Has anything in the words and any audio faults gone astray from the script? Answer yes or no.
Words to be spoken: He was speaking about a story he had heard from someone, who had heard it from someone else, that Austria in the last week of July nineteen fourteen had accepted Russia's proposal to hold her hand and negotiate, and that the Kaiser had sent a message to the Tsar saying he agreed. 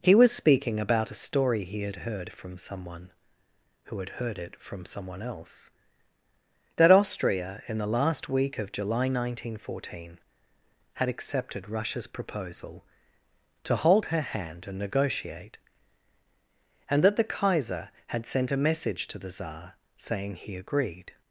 no